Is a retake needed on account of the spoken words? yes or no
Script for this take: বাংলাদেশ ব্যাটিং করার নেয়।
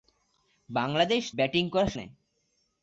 no